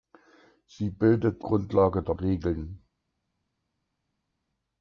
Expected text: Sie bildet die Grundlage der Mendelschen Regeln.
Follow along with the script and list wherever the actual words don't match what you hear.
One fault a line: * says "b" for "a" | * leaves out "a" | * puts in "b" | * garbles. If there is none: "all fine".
* leaves out "die"
* leaves out "Mendelschen"